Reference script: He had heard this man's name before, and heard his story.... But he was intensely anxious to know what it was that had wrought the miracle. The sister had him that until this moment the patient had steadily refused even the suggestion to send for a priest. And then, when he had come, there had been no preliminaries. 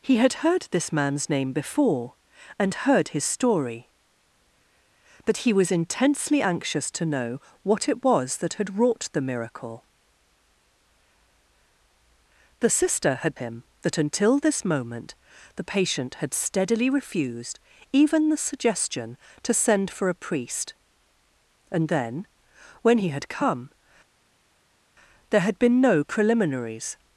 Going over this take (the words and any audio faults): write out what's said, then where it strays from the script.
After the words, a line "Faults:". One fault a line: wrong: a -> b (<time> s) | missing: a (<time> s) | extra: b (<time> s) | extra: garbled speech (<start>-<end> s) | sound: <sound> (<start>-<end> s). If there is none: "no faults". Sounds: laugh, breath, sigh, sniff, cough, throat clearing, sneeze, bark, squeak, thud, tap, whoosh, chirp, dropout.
He had heard this man's name before, and heard his story.... But he was intensely anxious to know what it was that had wrought the miracle. The sister had him that until this moment the patient had steadily refused even the suggestion to send for a priest. And then, when he had come, there had been no preliminaries.
Faults:
no faults